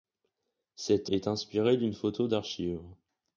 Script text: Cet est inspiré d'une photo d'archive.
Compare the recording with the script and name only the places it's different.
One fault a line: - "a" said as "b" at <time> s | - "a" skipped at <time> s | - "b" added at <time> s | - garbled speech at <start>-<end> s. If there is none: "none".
none